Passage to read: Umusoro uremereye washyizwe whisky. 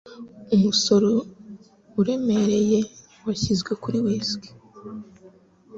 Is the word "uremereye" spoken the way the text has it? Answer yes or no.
yes